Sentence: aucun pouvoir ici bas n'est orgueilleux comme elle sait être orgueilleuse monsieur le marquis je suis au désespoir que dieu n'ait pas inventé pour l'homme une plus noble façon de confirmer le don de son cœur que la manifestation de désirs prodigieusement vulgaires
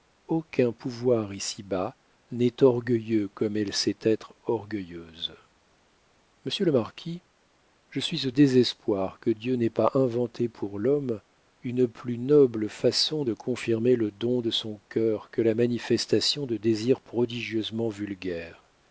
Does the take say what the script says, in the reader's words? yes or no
yes